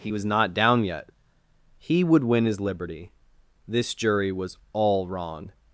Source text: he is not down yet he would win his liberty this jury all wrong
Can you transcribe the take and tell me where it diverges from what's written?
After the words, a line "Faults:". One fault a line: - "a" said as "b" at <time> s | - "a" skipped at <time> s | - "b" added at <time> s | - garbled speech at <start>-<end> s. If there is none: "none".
he was not down yet he would win his liberty this jury was all wrong
Faults:
- "is" said as "was" at 0.1 s
- "was" added at 4.3 s